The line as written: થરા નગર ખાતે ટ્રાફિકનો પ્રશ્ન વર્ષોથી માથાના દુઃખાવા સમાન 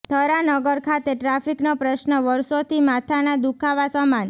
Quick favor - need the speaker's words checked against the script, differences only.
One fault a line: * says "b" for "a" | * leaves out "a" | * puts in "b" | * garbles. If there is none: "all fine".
all fine